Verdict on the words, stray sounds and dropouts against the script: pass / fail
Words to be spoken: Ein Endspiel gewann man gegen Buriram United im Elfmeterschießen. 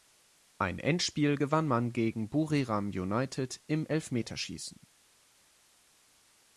pass